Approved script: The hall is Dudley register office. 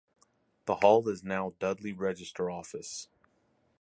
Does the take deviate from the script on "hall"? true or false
false